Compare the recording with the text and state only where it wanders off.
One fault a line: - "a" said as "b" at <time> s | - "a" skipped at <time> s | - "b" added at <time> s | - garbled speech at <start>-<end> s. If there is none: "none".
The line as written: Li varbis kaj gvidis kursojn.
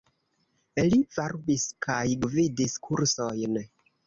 none